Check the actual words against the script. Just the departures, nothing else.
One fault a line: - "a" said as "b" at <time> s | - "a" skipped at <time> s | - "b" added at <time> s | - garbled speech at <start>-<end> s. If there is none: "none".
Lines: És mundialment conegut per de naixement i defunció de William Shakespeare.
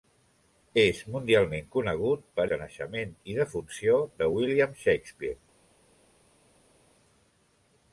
none